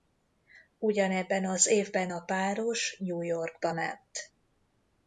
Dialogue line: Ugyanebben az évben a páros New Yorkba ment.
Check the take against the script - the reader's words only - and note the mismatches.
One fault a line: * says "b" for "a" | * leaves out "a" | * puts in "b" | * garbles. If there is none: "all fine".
all fine